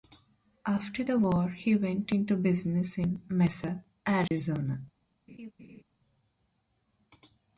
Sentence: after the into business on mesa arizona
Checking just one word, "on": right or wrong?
wrong